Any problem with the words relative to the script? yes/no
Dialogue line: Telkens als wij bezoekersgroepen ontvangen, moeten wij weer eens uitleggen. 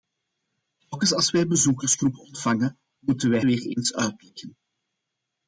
no